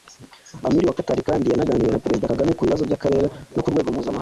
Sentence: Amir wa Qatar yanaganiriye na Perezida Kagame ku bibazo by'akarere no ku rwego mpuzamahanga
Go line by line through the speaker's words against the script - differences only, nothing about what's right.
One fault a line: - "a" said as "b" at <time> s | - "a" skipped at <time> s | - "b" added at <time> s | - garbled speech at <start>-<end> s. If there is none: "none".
- "kandi" added at 1.3 s